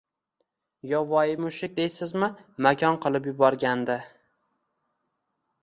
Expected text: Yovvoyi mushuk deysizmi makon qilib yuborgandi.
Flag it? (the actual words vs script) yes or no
no